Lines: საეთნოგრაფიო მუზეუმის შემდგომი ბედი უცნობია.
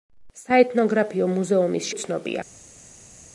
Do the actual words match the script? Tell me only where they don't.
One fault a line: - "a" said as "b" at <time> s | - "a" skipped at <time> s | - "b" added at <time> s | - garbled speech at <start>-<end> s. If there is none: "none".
- "შემდგომი ბედი" skipped at 1.9 s